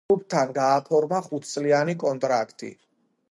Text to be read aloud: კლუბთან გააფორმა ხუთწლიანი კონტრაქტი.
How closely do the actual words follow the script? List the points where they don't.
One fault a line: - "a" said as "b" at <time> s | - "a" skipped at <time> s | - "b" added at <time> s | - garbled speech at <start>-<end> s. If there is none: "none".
none